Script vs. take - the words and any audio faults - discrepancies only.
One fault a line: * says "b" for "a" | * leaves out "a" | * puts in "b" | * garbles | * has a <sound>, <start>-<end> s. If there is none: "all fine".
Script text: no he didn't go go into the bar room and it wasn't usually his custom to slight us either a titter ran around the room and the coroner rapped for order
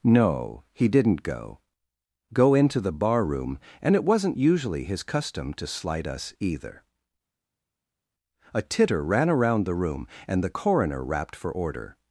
all fine